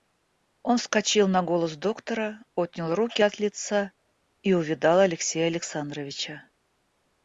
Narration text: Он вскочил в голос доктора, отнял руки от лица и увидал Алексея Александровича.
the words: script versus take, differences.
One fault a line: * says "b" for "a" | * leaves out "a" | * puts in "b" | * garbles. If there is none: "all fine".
* says "на" for "в"